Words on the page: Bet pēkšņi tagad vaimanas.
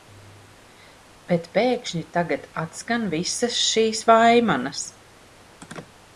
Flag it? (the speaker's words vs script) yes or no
yes